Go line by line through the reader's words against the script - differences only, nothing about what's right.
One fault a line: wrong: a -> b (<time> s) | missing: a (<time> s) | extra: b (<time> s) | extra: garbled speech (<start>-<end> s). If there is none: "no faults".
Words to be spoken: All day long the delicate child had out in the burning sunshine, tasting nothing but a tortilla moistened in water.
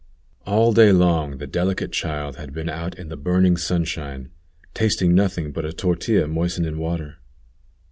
extra: been (2.5 s)